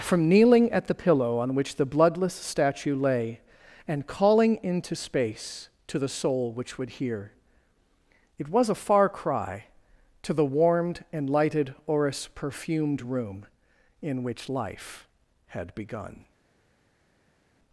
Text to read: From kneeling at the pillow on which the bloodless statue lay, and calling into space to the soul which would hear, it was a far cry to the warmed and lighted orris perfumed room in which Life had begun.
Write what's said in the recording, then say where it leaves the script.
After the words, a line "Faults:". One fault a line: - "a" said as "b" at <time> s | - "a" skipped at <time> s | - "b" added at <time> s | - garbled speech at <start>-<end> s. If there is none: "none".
From kneeling at the pillow on which the bloodless statue lay, and calling into space to the soul which would hear, it was a far cry to the warmed and lighted orris perfumed room in which Life had begun.
Faults:
none